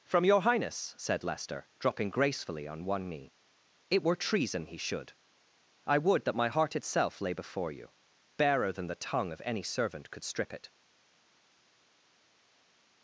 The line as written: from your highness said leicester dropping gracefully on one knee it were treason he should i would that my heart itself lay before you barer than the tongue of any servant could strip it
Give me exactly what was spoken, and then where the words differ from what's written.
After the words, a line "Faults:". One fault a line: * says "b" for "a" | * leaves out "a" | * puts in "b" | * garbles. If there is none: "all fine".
from your highness said leicester dropping gracefully on one knee it were treason he should i would that my heart itself lay before you barer than the tongue of any servant could strip it
Faults:
all fine